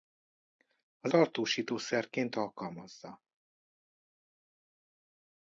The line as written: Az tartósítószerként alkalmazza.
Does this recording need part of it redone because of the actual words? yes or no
no